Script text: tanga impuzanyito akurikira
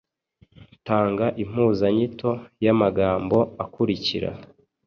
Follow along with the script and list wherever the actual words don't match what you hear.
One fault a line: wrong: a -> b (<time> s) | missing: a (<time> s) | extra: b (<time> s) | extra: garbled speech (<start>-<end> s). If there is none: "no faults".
extra: y'amagambo (2.6 s)